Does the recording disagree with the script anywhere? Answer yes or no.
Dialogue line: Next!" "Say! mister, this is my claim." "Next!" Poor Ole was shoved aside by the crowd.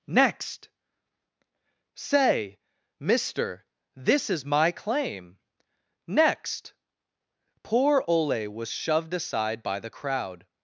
no